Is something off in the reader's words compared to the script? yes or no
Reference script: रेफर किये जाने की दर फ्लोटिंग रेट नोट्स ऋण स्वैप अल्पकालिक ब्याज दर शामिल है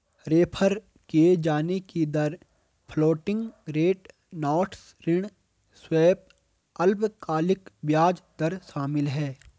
no